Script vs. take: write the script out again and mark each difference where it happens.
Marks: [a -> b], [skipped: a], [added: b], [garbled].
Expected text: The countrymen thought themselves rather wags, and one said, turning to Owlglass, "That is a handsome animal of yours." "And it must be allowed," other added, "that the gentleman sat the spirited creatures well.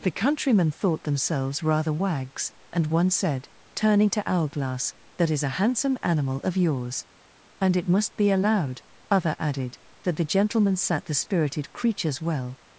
The countrymen thought themselves rather wags, and one said, turning to Owlglass, "That is a handsome animal of yours." "And it must be allowed," other added, "that the gentleman sat the spirited creatures well.